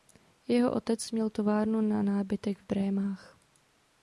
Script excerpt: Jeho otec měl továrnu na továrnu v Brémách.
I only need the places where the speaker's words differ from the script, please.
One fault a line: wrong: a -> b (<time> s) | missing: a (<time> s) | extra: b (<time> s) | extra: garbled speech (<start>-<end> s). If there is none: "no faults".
wrong: továrnu -> nábytek (2.0 s)